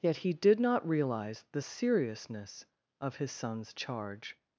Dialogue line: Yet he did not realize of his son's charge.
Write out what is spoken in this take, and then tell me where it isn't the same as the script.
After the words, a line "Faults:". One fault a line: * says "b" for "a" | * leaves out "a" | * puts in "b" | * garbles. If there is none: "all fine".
Yet he did not realize the seriousness of his son's charge.
Faults:
* puts in "the seriousness"